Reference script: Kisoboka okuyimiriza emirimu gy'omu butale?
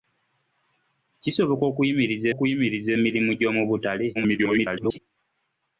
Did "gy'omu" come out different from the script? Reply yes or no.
no